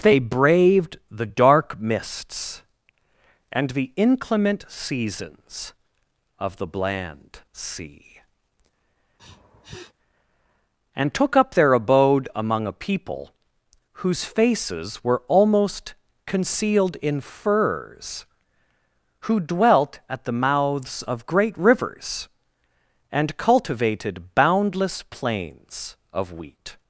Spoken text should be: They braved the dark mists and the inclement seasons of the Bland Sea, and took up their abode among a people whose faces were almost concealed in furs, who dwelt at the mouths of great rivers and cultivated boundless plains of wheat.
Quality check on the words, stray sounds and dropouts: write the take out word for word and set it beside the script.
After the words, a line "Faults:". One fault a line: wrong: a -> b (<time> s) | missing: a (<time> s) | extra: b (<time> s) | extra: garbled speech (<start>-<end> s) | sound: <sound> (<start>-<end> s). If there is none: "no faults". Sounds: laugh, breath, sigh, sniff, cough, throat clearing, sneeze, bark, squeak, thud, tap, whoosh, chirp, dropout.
They braved the dark mists and the inclement seasons of the Bland Sea, and took up their abode among a people whose faces were almost concealed in furs, who dwelt at the mouths of great rivers and cultivated boundless plains of wheat.
Faults:
sound: sniff (9.2-9.9 s)